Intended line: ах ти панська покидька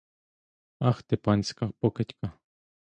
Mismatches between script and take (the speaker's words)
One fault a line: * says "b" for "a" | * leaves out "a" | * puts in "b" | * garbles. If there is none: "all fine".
all fine